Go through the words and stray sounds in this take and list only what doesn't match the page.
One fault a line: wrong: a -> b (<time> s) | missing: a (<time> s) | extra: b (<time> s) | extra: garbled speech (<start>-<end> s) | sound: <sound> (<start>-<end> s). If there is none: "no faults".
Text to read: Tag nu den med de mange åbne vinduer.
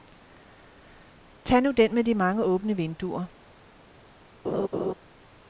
sound: laugh (4.4-4.9 s)